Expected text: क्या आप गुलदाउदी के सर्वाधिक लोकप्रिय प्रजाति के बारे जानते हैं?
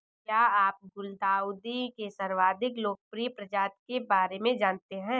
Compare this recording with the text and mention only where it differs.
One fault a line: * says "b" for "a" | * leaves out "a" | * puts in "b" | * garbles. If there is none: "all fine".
* puts in "में"